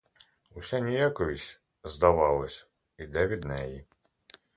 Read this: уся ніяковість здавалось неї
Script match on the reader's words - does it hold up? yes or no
no